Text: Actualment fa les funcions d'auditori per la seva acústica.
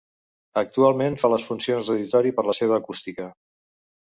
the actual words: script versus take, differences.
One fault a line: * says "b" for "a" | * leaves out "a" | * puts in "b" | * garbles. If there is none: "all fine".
all fine